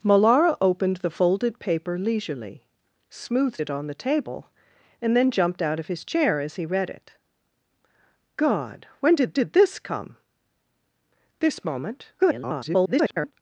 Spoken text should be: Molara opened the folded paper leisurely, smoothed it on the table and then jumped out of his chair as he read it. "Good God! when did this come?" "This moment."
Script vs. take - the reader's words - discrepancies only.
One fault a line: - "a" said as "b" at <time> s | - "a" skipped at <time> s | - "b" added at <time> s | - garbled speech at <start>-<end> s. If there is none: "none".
- "Good" skipped at 7.1 s
- "did" added at 9.3 s
- garbled speech at 12.2-13.3 s